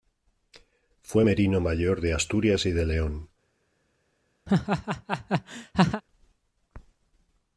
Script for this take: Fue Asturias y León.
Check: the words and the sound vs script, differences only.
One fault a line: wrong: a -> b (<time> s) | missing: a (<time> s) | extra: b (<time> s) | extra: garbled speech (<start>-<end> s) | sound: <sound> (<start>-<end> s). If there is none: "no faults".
extra: merino mayor de (1.2 s)
extra: de (2.7 s)
sound: laugh (4.5-6.0 s)